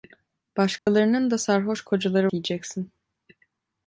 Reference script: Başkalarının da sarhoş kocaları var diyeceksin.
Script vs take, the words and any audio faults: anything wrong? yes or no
yes